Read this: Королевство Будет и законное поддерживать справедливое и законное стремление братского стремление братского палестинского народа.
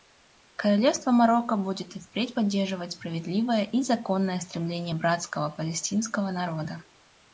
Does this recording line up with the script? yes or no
no